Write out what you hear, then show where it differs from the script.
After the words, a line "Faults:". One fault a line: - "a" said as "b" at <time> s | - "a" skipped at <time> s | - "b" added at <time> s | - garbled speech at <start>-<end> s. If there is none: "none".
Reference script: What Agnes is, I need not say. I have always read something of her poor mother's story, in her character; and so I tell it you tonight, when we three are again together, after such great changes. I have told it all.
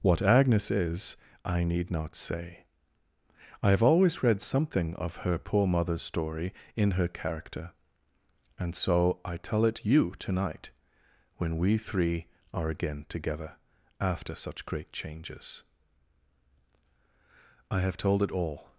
What Agnes is, I need not say. I have always read something of her poor mother's story, in her character; and so I tell it you tonight, when we three are again together, after such great changes. I have told it all.
Faults:
none